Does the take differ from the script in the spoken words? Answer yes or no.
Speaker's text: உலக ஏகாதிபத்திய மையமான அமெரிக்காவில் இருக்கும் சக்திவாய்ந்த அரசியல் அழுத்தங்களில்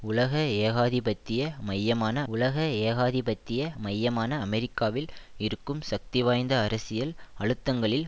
yes